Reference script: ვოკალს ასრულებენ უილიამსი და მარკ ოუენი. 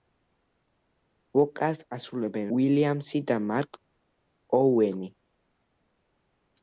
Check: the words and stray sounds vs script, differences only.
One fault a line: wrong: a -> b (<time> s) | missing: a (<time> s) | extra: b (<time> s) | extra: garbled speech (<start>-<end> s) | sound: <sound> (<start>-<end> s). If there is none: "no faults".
no faults